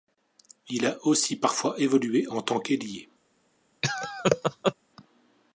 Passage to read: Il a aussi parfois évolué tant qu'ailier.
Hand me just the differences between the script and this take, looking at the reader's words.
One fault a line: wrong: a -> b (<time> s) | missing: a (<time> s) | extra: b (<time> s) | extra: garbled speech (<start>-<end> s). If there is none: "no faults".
extra: en (2.3 s)